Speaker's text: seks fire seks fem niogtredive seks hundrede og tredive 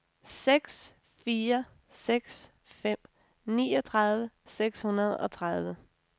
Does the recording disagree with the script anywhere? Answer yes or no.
no